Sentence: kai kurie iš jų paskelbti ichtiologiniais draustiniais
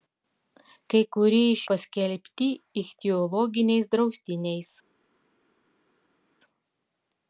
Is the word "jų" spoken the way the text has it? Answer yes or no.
no